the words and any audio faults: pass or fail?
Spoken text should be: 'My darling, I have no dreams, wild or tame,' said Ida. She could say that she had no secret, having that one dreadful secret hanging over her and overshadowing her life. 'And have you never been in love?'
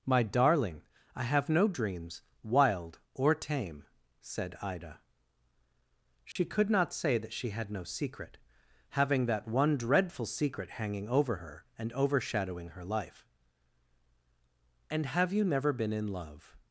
fail